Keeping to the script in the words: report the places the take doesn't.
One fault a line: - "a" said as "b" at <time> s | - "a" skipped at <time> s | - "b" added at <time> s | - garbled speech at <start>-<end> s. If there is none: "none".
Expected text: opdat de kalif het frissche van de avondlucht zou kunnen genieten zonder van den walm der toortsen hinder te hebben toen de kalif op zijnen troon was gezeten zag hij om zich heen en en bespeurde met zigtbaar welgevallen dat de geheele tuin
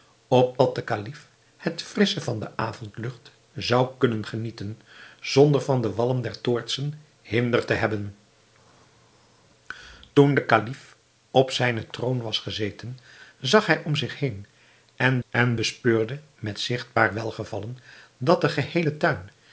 none